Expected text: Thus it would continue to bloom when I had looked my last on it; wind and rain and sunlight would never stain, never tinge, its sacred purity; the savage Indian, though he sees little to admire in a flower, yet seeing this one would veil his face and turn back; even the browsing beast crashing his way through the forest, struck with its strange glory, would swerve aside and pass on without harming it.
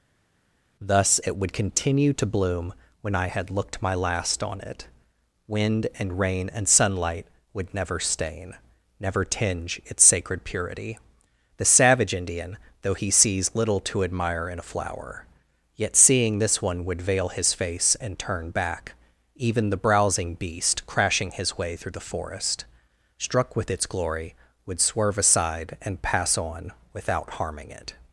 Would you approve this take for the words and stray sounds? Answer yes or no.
no